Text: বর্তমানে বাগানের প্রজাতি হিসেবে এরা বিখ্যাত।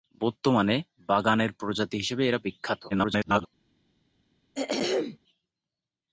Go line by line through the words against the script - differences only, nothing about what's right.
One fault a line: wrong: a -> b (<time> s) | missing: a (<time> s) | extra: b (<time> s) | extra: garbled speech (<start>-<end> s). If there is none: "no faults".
extra: garbled speech (2.9-3.5 s)